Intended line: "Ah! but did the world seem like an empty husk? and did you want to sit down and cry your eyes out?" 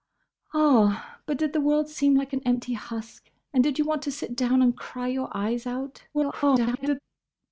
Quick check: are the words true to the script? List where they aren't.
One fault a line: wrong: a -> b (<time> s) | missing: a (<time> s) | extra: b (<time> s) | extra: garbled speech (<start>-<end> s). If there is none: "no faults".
extra: garbled speech (6.1-7.0 s)